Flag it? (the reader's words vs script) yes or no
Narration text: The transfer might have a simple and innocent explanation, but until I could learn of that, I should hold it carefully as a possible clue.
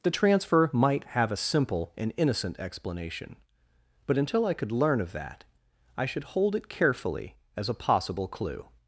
no